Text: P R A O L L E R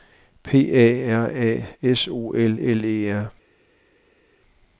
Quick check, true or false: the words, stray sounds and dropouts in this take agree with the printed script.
false